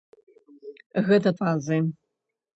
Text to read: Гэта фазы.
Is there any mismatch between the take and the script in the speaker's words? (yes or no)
no